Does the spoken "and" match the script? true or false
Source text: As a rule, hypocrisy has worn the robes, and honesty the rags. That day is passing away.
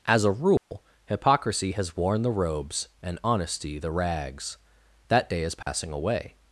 true